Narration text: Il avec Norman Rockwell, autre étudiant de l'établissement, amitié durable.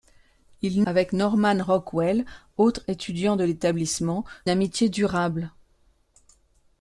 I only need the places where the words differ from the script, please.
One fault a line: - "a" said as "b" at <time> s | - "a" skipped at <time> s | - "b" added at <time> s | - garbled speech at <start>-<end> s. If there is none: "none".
none